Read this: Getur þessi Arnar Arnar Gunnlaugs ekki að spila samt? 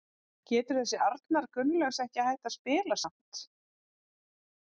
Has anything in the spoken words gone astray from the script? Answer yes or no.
yes